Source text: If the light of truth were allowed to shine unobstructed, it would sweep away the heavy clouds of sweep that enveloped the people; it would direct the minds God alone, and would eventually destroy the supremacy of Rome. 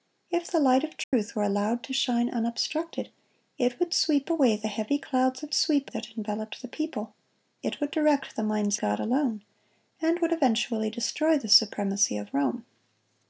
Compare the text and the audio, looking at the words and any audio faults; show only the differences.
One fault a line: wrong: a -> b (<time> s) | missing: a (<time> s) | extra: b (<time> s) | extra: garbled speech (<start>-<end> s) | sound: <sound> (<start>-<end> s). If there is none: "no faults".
sound: dropout (1.0-1.1 s)